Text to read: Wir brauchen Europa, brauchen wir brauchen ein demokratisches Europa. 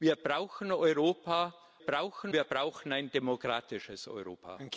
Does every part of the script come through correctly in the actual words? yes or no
yes